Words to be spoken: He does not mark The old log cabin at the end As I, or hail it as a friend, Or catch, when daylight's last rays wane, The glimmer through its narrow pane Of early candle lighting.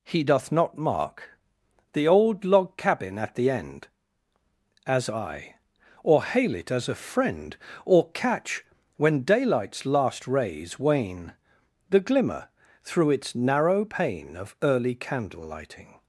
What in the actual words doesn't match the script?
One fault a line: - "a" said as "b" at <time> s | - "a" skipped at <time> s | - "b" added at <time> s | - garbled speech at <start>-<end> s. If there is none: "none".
- "does" said as "doth" at 0.2 s